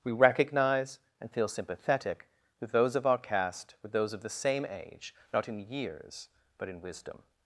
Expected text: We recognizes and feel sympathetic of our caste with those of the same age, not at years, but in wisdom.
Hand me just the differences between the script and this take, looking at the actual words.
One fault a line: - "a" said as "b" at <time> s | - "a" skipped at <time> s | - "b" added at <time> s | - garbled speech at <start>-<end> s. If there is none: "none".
- "recognizes" said as "recognize" at 0.1 s
- "with those" added at 2.6 s
- "at" said as "in" at 5.5 s